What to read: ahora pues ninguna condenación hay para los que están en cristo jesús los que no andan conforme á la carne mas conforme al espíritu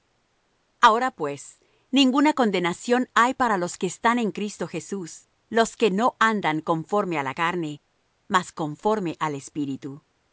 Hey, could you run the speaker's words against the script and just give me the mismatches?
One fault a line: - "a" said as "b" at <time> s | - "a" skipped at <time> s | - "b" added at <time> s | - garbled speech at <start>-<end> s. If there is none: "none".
none